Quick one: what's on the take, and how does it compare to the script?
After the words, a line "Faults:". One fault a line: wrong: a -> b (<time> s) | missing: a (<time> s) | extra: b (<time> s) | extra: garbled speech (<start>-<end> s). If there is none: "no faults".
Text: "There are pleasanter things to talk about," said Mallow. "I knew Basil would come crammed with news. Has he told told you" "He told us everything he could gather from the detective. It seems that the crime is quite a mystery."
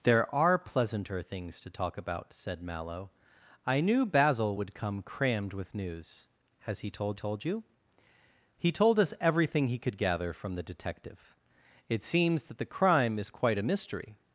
"There are pleasanter things to talk about," said Mallow. "I knew Basil would come crammed with news. Has he told told you" "He told us everything he could gather from the detective. It seems that the crime is quite a mystery."
Faults:
no faults